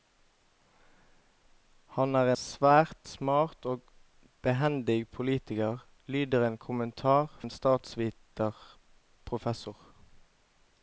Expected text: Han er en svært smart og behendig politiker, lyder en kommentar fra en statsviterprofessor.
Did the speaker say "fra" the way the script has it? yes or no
no